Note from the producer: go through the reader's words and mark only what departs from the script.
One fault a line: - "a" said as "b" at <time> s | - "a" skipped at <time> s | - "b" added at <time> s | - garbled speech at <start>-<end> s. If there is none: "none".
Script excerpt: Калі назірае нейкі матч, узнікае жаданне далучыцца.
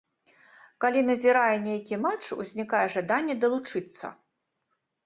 none